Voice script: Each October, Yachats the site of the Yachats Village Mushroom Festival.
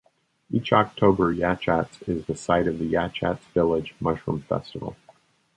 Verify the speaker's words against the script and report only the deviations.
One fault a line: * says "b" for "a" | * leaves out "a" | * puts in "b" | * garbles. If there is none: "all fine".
* puts in "is"